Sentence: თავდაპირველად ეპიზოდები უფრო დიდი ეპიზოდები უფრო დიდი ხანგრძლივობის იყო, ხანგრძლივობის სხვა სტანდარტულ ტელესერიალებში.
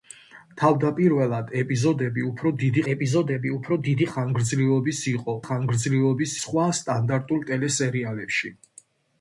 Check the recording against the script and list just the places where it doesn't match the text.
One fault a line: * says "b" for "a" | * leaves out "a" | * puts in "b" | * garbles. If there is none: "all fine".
all fine